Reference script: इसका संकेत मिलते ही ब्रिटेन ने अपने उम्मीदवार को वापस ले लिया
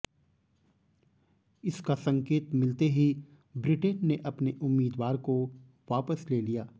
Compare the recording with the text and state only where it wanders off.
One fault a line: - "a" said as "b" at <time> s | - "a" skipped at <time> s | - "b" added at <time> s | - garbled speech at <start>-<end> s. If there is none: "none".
none